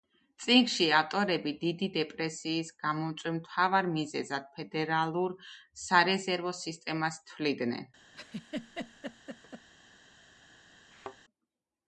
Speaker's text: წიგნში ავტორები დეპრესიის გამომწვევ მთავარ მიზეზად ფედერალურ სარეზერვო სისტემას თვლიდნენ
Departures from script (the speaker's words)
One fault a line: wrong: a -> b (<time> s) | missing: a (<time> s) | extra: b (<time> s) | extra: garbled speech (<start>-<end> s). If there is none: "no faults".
extra: დიდი (1.6 s)